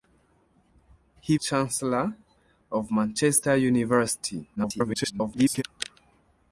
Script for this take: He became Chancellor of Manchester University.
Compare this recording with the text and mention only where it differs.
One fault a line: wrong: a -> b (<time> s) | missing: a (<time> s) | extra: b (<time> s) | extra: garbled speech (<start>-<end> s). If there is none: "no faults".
missing: became (1.4 s)
extra: garbled speech (4.6-5.6 s)